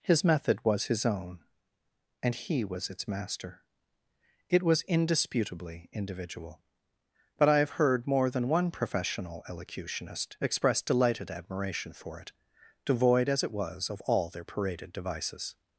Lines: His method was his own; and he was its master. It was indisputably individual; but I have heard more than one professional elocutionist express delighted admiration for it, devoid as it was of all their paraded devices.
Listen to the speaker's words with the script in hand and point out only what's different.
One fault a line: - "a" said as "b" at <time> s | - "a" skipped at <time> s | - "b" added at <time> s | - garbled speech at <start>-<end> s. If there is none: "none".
none